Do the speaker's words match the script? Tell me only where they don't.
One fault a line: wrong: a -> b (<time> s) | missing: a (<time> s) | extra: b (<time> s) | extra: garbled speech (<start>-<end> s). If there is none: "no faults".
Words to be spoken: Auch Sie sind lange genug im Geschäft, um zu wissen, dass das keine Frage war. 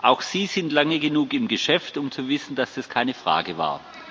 no faults